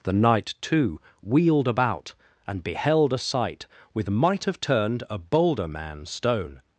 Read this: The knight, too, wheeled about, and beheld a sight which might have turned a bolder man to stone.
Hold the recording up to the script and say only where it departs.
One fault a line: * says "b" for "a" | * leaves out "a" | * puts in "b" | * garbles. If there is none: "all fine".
* says "with" for "which"
* leaves out "to"